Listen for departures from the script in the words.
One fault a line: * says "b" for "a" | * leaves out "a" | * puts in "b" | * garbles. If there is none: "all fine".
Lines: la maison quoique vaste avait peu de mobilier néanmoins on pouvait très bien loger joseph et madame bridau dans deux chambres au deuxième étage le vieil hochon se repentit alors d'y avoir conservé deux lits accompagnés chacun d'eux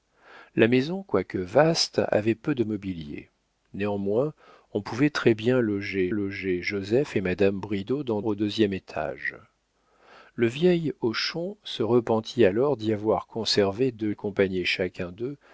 * puts in "loger"
* leaves out "deux chambres"
* leaves out "lits"